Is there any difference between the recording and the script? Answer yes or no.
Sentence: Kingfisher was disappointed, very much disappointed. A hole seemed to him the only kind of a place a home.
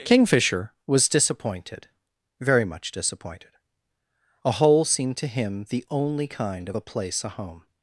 no